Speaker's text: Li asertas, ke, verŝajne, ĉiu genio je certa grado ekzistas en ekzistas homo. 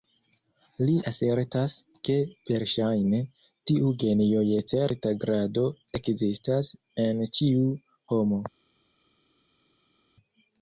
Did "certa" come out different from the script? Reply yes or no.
no